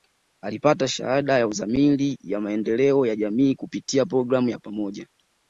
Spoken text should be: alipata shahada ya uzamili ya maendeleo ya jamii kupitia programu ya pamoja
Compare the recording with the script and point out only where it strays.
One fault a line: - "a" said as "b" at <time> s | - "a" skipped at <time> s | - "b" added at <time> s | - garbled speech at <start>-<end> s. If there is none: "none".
none